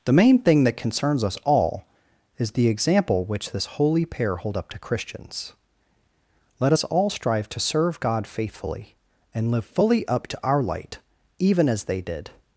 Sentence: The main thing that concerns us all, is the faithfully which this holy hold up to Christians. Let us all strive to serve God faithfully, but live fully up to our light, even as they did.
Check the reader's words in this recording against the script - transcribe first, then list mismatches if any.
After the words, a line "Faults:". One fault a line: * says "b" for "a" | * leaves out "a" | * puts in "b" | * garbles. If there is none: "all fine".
The main thing that concerns us all, is the example which this holy pair hold up to Christians. Let us all strive to serve God faithfully, and live fully up to our light, even as they did.
Faults:
* says "example" for "faithfully"
* puts in "pair"
* says "and" for "but"